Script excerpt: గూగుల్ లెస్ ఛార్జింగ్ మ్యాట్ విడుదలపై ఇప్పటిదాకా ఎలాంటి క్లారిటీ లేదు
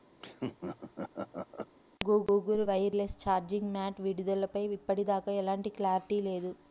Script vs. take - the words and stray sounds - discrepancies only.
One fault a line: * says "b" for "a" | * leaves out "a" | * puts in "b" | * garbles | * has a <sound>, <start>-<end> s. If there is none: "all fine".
* has a laugh, 0.2-1.7 s
* puts in "వైర్"